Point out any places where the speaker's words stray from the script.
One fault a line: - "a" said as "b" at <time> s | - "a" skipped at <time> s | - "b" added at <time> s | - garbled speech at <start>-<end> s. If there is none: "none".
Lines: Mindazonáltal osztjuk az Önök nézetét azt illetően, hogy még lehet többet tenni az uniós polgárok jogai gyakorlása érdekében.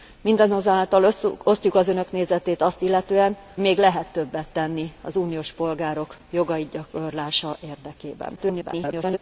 - "hogy" skipped at 3.4 s
- garbled speech at 8.4-9.2 s